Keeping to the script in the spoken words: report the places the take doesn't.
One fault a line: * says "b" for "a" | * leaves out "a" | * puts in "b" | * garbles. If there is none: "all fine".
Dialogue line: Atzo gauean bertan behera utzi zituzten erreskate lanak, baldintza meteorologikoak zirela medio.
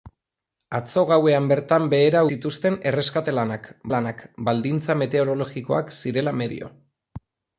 * leaves out "utzi"
* puts in "lanak"